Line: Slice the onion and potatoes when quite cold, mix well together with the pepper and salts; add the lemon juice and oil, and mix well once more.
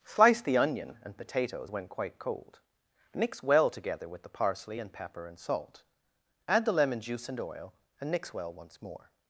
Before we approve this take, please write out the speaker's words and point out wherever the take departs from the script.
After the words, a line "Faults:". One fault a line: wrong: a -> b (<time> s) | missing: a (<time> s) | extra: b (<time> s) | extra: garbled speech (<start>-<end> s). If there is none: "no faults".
Slice the onion and potatoes when quite cold, mix well together with the parsley and pepper and salt; add the lemon juice and oil, and mix well once more.
Faults:
extra: parsley and (4.3 s)
wrong: salts -> salt (5.4 s)